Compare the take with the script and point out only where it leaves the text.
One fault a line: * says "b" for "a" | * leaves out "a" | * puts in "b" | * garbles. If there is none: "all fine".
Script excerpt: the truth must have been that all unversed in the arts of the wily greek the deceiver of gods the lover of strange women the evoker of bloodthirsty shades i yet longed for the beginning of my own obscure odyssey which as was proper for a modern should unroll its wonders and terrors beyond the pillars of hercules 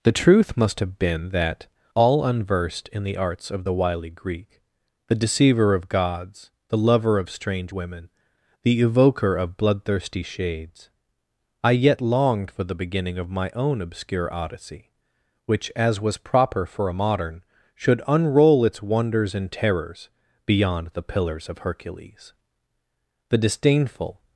* puts in "the disdainful"